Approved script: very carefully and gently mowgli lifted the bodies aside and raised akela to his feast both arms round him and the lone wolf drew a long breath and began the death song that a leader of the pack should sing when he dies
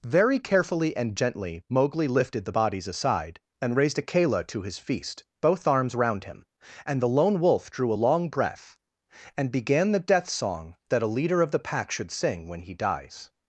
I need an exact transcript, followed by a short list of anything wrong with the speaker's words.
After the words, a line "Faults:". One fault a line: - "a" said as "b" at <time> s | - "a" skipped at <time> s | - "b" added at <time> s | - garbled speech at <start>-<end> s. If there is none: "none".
very carefully and gently mowgli lifted the bodies aside and raised akela to his feast both arms round him and the lone wolf drew a long breath and began the death song that a leader of the pack should sing when he dies
Faults:
none